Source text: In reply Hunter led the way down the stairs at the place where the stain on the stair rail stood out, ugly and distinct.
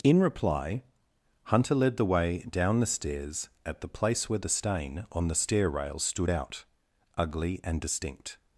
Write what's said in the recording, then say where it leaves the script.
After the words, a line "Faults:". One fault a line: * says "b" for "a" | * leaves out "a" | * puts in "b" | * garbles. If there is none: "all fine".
In reply Hunter led the way down the stairs at the place where the stain on the stair rail stood out, ugly and distinct.
Faults:
all fine